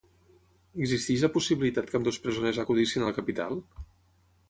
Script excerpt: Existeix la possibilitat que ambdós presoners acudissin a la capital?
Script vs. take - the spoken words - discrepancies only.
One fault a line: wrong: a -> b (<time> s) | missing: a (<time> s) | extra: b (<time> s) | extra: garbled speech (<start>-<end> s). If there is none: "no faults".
no faults